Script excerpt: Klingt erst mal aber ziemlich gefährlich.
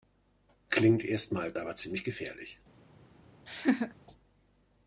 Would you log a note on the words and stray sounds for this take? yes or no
yes